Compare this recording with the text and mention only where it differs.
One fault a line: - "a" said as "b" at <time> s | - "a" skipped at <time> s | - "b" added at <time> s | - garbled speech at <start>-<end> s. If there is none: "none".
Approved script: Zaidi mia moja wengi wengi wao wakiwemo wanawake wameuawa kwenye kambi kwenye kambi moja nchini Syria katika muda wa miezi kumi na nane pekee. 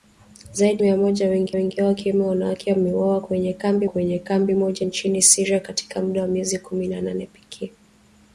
none